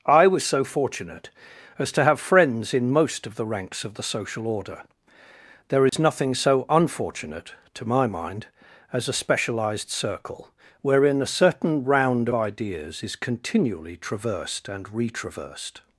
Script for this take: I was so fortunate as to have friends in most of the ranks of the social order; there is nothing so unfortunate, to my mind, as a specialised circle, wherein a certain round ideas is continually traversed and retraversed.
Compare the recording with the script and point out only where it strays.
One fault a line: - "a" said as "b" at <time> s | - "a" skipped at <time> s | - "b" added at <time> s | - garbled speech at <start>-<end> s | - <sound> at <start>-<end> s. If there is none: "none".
- dropout at 5.9-5.9 s